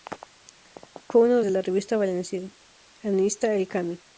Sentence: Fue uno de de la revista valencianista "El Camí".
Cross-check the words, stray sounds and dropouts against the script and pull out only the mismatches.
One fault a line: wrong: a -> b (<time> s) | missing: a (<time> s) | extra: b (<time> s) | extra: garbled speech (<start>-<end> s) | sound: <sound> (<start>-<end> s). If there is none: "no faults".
no faults